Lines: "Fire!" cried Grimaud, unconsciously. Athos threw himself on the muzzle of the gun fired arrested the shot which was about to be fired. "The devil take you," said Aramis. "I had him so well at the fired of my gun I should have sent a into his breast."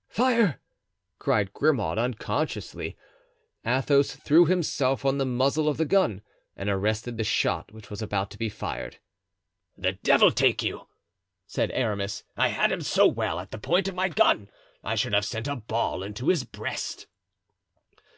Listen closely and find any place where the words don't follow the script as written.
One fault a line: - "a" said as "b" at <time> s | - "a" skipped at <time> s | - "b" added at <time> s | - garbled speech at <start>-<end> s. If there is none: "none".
- "fired" said as "and" at 6.6 s
- "fired" said as "point" at 13.6 s
- "ball" added at 15.6 s